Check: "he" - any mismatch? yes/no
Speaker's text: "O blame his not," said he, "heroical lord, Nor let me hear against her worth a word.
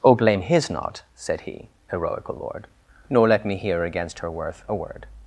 no